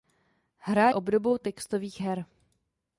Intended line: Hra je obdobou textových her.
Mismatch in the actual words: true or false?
true